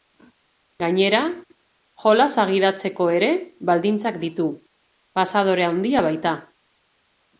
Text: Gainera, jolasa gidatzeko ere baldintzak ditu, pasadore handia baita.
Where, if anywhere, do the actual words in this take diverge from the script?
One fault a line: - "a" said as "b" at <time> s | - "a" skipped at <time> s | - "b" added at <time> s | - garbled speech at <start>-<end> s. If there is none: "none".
none